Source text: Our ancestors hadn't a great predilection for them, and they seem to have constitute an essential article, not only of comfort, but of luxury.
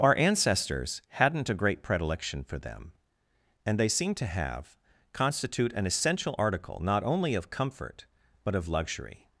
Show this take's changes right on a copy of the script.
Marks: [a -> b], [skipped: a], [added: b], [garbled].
Our ancestors hadn't a great predilection for them, and they seem to have constitute an essential article, not only of comfort, but of luxury.